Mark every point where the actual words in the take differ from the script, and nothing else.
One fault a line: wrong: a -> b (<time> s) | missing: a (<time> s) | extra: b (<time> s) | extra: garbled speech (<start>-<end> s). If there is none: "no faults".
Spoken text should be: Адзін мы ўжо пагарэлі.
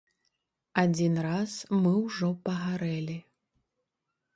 extra: раз (1.3 s)